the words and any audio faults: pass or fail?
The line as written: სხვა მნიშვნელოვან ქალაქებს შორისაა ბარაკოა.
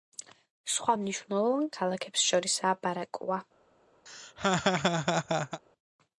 fail